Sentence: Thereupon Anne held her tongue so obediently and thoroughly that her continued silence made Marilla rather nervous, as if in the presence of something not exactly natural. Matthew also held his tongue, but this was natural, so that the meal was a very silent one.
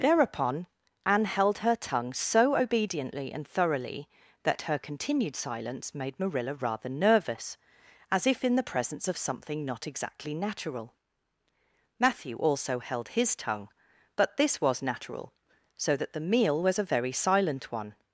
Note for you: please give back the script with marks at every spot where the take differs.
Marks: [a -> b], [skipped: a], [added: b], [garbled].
Thereupon Anne held her tongue so obediently and thoroughly that her continued silence made Marilla rather nervous, as if in the presence of something not exactly natural. Matthew also held his tongue, but this was natural, so that the meal was a very silent one.